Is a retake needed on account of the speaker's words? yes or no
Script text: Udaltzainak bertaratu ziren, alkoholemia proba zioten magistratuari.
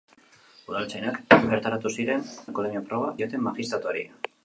no